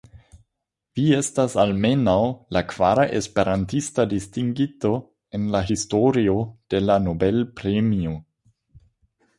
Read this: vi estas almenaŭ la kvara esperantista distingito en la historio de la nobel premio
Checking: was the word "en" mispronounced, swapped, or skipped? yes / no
no